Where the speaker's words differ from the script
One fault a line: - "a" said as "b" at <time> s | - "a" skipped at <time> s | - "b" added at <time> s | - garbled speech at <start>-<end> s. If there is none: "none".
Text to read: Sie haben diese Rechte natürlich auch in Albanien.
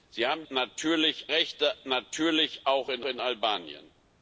- "diese" said as "natürlich" at 0.5 s
- "in" added at 3.0 s